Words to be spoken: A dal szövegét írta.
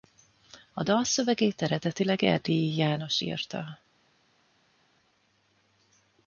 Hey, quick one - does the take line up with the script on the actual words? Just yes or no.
no